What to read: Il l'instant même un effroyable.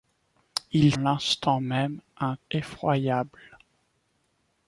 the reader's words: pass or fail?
pass